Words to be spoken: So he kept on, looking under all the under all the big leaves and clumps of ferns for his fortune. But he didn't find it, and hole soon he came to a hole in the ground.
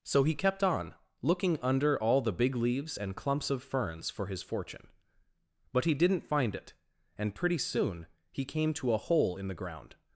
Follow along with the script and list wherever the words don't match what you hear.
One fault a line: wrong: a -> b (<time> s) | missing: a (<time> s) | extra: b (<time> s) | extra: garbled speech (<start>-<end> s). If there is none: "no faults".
missing: under all the (2.3 s)
wrong: hole -> pretty (7.4 s)